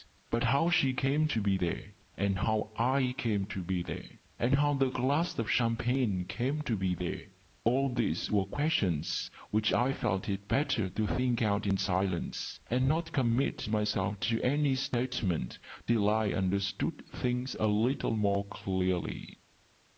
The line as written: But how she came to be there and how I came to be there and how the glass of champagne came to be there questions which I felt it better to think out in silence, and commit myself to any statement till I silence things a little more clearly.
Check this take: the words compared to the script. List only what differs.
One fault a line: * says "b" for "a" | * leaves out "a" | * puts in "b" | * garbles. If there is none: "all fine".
* puts in "all these were"
* puts in "not"
* says "understood" for "silence"